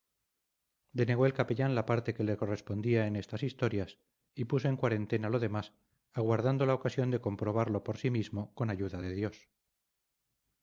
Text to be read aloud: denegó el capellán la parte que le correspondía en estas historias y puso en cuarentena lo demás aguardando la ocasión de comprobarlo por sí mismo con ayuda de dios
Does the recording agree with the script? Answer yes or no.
yes